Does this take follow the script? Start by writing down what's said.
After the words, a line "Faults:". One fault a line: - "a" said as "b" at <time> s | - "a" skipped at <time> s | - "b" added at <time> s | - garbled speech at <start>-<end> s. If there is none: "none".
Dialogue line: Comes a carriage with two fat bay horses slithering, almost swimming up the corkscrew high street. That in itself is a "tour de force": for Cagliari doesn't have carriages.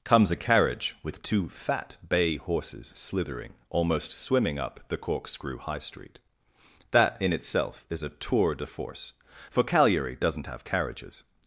Comes a carriage with two fat bay horses slithering, almost swimming up the corkscrew high street. That in itself is a "tour de force": for Cagliari doesn't have carriages.
Faults:
none